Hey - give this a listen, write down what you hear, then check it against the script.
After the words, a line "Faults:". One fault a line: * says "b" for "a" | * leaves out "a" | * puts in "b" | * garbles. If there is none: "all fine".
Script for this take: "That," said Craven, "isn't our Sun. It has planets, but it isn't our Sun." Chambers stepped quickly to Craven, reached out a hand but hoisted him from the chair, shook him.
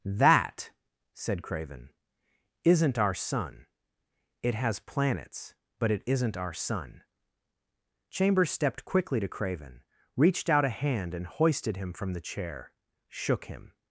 "That," said Craven, "isn't our Sun. It has planets, but it isn't our Sun." Chambers stepped quickly to Craven, reached out a hand and hoisted him from the chair, shook him.
Faults:
* says "and" for "but"